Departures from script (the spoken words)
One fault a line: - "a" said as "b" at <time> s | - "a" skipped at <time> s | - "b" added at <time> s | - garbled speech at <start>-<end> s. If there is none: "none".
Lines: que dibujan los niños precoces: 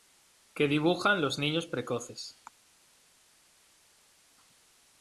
none